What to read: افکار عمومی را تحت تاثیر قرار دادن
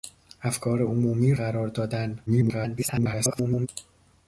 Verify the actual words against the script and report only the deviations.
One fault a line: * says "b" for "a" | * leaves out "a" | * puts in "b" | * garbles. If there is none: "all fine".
* leaves out "را تحت تاثیر"
* garbles